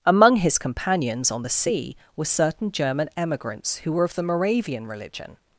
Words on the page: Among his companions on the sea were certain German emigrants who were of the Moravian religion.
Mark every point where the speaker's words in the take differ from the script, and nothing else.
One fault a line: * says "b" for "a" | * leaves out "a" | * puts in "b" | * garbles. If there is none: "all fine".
all fine